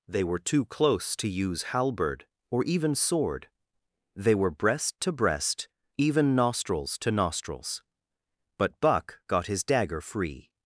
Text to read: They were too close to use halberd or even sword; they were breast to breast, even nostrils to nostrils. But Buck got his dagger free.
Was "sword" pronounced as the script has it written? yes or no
yes